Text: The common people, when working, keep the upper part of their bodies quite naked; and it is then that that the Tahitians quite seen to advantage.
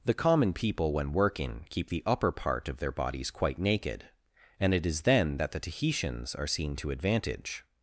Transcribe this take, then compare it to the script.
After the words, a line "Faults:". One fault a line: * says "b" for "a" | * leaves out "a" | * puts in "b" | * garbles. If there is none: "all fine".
The common people, when working, keep the upper part of their bodies quite naked; and it is then that the Tahitians are seen to advantage.
Faults:
* leaves out "that"
* says "are" for "quite"